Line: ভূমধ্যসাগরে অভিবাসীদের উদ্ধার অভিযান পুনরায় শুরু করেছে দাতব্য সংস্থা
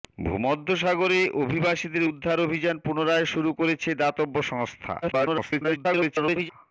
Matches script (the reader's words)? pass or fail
fail